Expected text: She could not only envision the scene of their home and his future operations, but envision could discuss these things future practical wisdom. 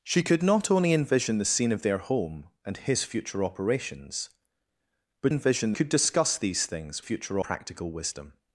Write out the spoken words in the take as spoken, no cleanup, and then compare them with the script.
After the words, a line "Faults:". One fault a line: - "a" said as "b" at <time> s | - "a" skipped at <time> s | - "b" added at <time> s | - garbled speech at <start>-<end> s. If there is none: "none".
She could not only envision the scene of their home and his future operations, but envision could discuss these things future practical wisdom.
Faults:
none